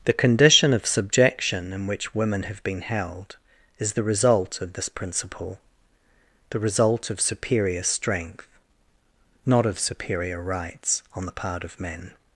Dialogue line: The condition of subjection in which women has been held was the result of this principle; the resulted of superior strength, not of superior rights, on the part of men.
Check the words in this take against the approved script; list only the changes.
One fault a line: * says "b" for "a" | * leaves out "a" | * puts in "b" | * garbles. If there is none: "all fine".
* says "have" for "has"
* says "is" for "was"
* says "result" for "resulted"